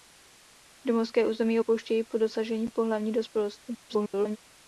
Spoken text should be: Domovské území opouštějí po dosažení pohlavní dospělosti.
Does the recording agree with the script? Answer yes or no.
no